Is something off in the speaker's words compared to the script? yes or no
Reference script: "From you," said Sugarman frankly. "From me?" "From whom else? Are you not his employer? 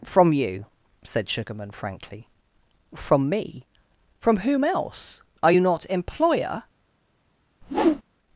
yes